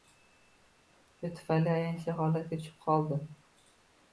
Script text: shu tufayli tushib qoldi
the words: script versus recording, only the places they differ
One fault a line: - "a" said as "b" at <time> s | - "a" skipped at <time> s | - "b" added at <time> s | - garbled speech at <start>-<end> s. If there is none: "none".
- "ayanchli holatga" added at 1.8 s